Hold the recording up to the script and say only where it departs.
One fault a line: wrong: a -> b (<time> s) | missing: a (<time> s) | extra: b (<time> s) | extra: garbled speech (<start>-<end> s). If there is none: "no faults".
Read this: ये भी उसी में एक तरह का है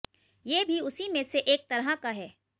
extra: से (1.2 s)